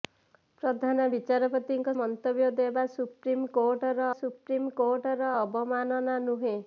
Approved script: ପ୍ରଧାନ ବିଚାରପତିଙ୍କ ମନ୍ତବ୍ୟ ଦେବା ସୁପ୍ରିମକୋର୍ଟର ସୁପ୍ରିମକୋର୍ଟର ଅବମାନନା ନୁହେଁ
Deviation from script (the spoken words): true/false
false